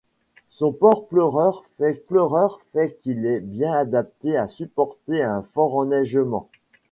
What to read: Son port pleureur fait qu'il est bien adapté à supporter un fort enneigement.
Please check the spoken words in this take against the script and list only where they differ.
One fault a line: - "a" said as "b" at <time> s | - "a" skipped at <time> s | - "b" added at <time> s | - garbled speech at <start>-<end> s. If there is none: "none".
- "pleureur fait" added at 2.0 s